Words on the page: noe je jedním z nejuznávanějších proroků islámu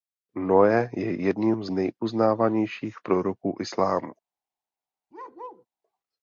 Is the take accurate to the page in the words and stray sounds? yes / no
no